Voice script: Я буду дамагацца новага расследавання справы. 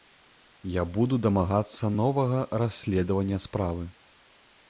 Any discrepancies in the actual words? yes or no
no